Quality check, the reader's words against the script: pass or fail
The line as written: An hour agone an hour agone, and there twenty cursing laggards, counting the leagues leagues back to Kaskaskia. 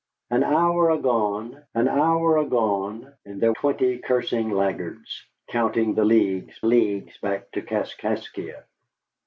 pass